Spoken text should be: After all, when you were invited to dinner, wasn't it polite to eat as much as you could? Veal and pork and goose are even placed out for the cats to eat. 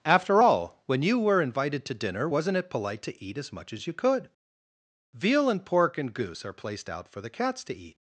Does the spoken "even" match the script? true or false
false